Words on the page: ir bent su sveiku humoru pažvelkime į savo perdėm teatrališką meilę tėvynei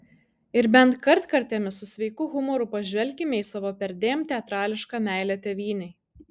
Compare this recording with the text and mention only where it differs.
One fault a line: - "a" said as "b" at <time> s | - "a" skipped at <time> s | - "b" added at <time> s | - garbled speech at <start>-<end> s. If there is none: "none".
- "kartkartėmis" added at 1.1 s